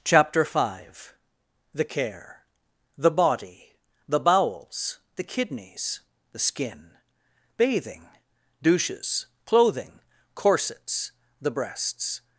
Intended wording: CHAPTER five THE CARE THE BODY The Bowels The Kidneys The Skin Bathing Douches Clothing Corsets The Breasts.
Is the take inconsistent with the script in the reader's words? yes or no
no